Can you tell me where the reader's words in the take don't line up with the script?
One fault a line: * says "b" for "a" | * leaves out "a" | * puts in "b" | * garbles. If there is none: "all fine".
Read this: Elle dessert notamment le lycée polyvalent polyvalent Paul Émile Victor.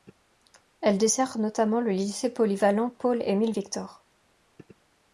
* leaves out "polyvalent"